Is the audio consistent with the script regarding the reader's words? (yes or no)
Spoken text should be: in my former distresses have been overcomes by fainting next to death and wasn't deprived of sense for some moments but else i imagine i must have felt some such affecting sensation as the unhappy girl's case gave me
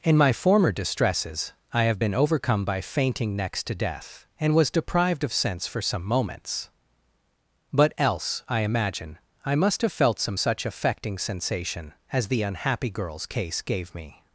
no